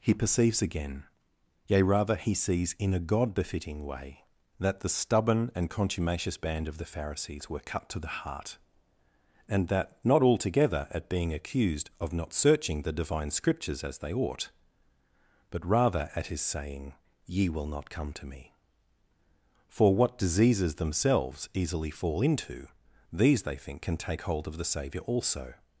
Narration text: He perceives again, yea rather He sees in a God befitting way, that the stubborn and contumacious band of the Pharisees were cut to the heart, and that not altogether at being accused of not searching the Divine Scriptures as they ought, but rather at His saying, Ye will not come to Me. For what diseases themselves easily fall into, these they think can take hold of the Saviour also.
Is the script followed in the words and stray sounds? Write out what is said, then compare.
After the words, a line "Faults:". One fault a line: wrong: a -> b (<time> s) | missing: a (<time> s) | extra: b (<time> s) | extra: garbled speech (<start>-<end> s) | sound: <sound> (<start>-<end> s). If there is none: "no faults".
He perceives again, yea rather He sees in a God befitting way, that the stubborn and contumacious band of the Pharisees were cut to the heart, and that not altogether at being accused of not searching the Divine Scriptures as they ought, but rather at His saying, Ye will not come to Me. For what diseases themselves easily fall into, these they think can take hold of the Saviour also.
Faults:
no faults